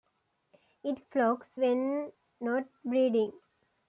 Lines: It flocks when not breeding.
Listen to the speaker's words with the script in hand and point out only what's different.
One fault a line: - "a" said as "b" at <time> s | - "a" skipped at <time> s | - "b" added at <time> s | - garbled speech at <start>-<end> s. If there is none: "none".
none